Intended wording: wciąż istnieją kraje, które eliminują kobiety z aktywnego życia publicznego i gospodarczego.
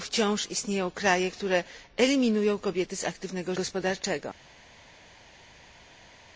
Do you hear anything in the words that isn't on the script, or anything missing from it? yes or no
yes